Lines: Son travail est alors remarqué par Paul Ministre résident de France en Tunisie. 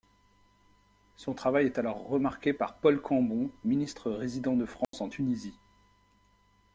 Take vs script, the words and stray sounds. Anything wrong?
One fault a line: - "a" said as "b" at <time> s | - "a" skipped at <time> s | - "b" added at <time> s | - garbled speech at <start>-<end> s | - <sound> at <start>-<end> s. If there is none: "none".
- "Cambon" added at 3.0 s
- dropout at 4.8-4.9 s